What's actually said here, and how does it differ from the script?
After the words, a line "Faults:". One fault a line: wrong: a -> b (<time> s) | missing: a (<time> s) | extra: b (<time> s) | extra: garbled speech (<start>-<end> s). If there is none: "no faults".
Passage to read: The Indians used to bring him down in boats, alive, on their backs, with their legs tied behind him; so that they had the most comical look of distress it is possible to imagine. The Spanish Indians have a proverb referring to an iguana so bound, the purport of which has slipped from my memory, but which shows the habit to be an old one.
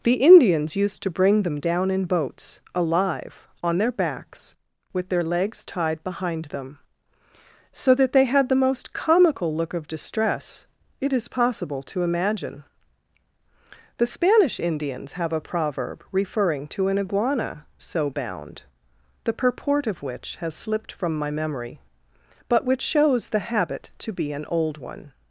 The Indians used to bring them down in boats, alive, on their backs, with their legs tied behind them; so that they had the most comical look of distress it is possible to imagine. The Spanish Indians have a proverb referring to an iguana so bound, the purport of which has slipped from my memory, but which shows the habit to be an old one.
Faults:
wrong: him -> them (1.4 s)
wrong: him -> them (6.5 s)